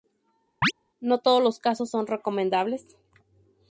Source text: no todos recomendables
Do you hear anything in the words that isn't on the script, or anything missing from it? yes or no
yes